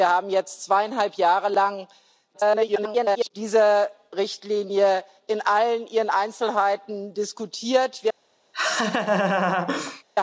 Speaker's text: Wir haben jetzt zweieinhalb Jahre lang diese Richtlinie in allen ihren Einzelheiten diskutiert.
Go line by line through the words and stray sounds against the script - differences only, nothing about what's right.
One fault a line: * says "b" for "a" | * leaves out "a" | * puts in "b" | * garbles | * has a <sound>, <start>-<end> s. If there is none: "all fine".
* garbles
* has a laugh, 8.5-10.0 s